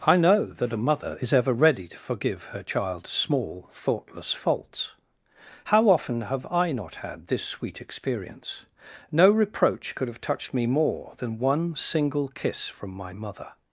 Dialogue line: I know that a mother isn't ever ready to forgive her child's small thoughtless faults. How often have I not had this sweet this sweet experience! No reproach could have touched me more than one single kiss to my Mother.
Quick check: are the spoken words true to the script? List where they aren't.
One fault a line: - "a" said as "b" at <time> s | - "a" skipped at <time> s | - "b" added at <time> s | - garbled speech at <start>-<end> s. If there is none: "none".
- "isn't" said as "is" at 1.2 s
- "this sweet" skipped at 7.8 s
- "to" said as "from" at 12.7 s